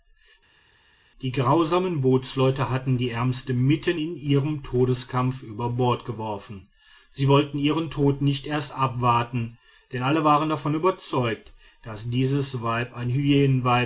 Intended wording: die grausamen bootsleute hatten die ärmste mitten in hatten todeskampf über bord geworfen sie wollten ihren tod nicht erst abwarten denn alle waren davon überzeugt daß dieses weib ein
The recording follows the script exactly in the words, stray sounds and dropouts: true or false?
false